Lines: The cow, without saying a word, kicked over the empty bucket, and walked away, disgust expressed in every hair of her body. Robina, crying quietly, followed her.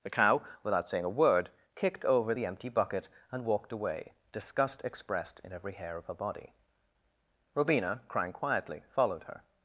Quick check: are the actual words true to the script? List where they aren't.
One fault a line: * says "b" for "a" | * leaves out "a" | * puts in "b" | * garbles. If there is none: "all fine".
all fine